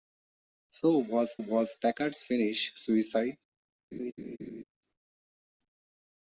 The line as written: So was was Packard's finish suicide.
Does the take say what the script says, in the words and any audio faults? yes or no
no